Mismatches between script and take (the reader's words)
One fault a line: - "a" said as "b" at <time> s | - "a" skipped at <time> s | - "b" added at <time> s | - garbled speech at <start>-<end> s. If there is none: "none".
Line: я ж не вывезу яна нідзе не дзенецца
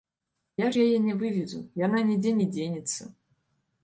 - "яе" added at 0.8 s